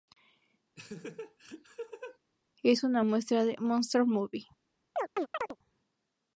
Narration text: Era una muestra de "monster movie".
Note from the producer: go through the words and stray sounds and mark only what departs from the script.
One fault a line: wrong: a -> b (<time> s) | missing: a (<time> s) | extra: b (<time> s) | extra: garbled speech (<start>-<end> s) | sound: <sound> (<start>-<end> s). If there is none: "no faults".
sound: laugh (0.8-2.2 s)
wrong: Era -> Es (2.6 s)
sound: chirp (5.0-5.6 s)